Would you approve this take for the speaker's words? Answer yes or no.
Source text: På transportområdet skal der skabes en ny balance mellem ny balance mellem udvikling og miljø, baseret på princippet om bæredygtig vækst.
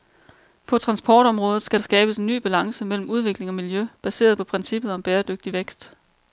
no